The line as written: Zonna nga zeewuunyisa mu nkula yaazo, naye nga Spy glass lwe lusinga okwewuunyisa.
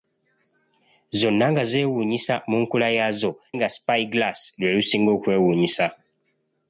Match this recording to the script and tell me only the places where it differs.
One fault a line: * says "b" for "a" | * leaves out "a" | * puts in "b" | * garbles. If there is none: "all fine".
* leaves out "naye"